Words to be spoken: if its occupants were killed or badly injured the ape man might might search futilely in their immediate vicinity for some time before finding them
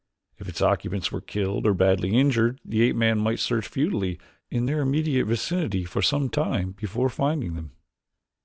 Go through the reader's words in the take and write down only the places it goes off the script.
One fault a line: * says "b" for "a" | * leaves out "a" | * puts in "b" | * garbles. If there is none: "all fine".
* leaves out "might"